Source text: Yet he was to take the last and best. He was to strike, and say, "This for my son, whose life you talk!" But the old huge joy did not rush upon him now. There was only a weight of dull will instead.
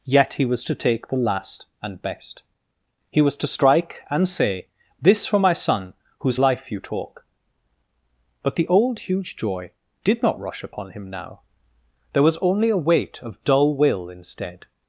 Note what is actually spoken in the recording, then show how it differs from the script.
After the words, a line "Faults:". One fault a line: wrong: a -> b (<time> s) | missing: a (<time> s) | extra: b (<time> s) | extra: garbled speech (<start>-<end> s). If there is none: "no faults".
Yet he was to take the last and best. He was to strike, and say, "This for my son, whose life you talk!" But the old huge joy did not rush upon him now. There was only a weight of dull will instead.
Faults:
no faults